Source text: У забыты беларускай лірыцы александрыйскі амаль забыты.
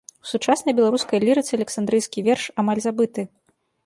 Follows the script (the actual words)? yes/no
no